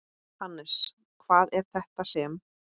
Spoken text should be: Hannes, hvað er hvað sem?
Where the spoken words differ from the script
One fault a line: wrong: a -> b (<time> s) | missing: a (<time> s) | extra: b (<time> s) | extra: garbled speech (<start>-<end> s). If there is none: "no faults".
wrong: hvað -> þetta (1.8 s)